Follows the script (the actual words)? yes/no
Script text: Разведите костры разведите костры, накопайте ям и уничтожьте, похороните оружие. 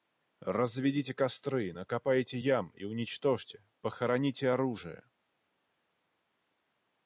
no